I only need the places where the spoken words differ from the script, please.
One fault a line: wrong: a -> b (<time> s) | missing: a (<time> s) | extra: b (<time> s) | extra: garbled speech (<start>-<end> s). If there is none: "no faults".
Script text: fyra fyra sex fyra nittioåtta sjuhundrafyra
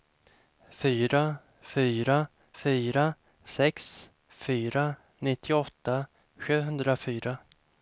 extra: fyra (2.6 s)